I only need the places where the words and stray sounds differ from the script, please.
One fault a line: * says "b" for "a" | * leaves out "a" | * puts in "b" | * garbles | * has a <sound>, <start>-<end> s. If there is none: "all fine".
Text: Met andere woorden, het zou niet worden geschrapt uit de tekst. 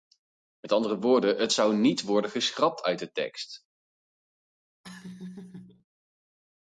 * has a laugh, 4.8-5.8 s